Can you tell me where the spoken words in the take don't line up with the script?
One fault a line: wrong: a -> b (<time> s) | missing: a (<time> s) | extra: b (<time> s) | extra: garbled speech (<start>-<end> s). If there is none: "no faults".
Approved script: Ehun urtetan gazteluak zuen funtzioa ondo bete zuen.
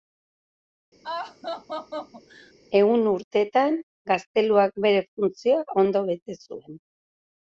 wrong: zuen -> bere (4.9 s)